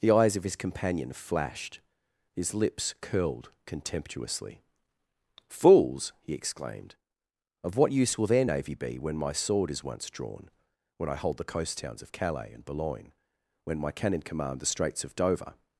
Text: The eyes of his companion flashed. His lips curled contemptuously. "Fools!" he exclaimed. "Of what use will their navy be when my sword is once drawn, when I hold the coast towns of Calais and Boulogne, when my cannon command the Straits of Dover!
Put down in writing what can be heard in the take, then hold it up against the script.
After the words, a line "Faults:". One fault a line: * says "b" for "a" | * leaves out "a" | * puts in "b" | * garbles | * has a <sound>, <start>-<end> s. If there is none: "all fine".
The eyes of his companion flashed. His lips curled contemptuously. "Fools!" he exclaimed. "Of what use will their navy be when my sword is once drawn, when I hold the coast towns of Calais and Boulogne, when my cannon command the Straits of Dover!
Faults:
all fine